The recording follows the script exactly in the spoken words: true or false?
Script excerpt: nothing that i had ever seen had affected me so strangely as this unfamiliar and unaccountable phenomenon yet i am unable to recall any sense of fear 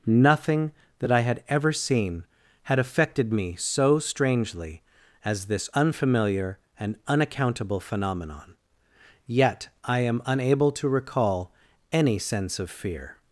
true